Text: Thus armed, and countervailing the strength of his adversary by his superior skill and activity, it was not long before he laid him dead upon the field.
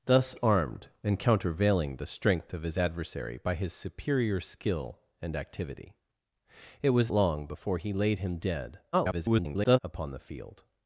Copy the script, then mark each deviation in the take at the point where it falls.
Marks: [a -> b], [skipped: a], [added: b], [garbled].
Thus armed, and countervailing the strength of his adversary by his superior skill and activity, it was [skipped: not] long before he laid him dead [garbled] upon the field.